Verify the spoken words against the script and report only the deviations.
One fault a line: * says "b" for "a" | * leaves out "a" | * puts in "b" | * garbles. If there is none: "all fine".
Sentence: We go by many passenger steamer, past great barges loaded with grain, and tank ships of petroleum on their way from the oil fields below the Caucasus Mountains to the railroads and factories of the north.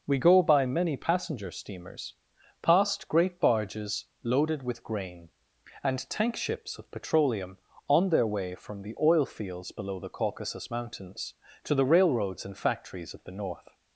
* says "steamers" for "steamer"